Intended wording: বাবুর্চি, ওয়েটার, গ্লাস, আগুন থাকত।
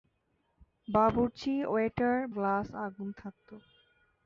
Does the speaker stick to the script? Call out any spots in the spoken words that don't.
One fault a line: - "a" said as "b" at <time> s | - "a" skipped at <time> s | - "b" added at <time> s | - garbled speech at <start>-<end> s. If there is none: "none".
none